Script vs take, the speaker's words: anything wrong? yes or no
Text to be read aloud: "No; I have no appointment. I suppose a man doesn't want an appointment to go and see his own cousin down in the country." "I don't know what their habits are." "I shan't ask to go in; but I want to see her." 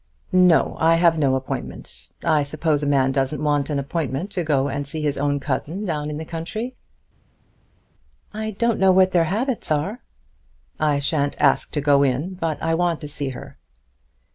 no